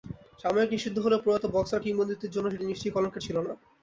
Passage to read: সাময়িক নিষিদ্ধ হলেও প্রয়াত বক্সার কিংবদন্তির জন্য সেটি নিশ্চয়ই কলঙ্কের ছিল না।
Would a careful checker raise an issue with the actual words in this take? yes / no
no